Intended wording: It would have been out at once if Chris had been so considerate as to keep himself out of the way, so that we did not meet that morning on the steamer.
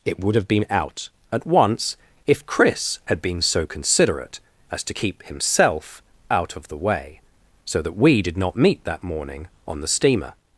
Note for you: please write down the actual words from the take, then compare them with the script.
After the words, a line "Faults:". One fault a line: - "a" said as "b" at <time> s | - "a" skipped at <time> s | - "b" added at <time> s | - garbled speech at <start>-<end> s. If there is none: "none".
It would have been out at once if Chris had been so considerate as to keep himself out of the way, so that we did not meet that morning on the steamer.
Faults:
none